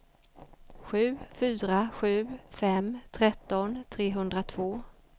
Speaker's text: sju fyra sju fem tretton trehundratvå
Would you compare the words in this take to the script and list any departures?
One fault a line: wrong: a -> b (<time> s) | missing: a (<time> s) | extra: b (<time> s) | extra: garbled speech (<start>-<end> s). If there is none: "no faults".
no faults